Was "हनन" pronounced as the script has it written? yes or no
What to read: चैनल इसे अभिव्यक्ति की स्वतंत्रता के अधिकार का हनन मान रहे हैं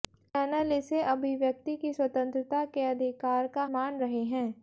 no